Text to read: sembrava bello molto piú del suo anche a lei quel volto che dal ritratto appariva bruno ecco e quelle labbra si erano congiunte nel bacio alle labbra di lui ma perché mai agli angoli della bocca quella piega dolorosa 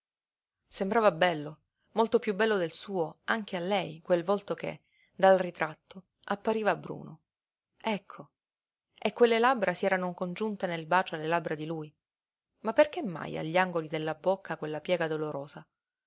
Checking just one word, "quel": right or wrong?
right